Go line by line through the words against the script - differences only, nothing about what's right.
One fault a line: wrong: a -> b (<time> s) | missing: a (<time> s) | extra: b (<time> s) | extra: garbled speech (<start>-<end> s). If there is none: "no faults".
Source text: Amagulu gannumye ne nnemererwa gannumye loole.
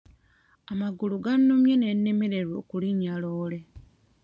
wrong: gannumye -> okulinnya (2.6 s)